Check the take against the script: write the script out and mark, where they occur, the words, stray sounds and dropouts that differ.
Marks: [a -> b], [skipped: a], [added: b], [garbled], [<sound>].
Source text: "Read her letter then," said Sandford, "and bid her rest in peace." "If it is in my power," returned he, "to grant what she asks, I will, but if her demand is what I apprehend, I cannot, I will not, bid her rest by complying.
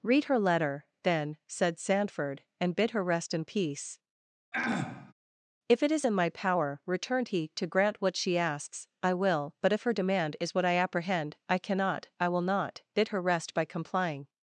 "Read her letter then," said Sandford, "and bid her rest in peace." [throat clearing] "If it is in my power," returned he, "to grant what she asks, I will, but if her demand is what I apprehend, I cannot, I will not, bid her rest by complying.